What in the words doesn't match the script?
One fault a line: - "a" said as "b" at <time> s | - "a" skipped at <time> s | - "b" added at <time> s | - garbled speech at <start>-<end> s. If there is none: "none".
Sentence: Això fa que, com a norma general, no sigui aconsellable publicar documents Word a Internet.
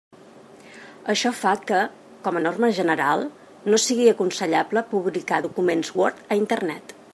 none